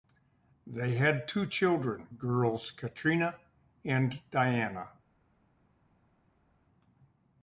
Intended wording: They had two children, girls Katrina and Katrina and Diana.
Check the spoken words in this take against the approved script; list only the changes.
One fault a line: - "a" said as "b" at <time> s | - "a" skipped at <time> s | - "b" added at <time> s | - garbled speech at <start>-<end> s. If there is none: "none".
- "Katrina and" skipped at 4.2 s